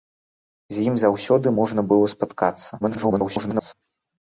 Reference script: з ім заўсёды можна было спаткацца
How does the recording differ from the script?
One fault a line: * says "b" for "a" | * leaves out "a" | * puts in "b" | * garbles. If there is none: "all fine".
* garbles